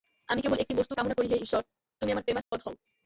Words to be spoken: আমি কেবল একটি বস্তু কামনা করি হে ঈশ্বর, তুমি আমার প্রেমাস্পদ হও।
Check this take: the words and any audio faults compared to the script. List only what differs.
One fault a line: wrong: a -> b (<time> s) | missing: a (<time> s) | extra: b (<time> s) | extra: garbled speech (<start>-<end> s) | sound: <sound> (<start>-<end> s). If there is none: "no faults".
sound: dropout (2.4-2.5 s)